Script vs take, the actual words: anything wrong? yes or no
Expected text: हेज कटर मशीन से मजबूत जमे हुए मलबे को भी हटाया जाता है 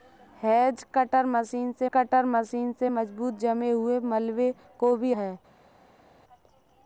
yes